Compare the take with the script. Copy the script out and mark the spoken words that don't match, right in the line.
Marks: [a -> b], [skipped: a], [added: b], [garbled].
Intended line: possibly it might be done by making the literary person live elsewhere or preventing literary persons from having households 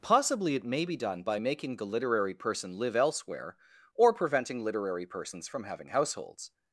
possibly it [might -> may] be done by making the literary person live elsewhere or preventing literary persons from having households